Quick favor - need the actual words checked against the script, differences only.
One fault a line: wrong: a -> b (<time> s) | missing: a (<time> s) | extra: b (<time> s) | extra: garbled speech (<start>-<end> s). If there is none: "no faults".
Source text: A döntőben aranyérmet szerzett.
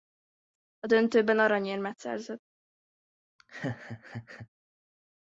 no faults